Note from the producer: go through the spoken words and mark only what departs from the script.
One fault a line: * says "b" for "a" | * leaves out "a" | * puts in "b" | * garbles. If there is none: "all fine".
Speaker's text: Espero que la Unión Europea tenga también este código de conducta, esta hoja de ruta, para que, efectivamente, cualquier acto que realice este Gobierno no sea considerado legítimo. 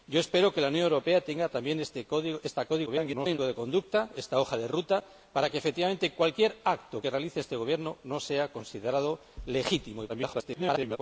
* garbles
* garbles